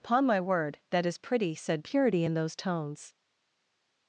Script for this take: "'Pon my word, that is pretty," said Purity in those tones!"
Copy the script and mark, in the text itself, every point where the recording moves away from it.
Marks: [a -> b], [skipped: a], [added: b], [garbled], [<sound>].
"'Pon my word, that is pretty," said Purity in those tones!"